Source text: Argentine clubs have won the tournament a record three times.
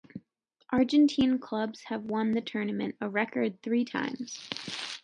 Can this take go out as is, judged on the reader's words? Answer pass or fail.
pass